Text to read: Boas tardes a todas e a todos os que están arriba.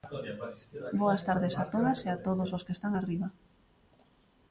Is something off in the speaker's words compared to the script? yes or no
no